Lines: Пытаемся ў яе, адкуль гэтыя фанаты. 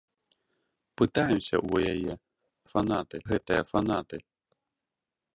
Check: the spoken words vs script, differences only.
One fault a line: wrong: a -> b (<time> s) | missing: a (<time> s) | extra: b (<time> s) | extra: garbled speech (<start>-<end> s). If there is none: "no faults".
wrong: адкуль -> фанаты (2.7 s)